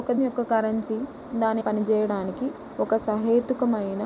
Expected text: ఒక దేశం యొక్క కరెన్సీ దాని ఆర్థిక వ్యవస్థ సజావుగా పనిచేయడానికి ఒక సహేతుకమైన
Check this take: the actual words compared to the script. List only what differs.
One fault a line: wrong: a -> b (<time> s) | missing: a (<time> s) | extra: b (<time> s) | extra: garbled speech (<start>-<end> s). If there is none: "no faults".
missing: దేశం (0.1 s)
missing: ఆర్థిక వ్యవస్థ సజావుగా (1.6 s)